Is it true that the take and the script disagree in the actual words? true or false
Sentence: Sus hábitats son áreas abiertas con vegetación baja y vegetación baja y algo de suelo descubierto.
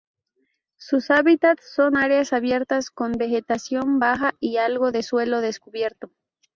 true